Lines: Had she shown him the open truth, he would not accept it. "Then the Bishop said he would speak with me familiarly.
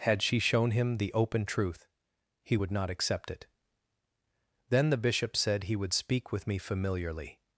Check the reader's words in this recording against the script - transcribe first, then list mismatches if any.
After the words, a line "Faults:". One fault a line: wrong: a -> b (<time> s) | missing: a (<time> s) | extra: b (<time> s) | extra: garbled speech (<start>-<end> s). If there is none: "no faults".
Had she shown him the open truth, he would not accept it. "Then the Bishop said he would speak with me familiarly.
Faults:
no faults